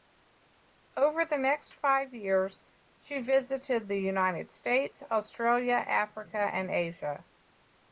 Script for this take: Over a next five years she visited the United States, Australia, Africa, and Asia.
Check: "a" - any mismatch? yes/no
yes